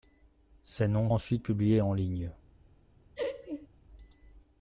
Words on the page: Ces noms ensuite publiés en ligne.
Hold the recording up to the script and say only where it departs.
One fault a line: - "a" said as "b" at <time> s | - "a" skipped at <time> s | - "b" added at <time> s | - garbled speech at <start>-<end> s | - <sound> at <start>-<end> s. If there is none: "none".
- laugh at 3.1-3.7 s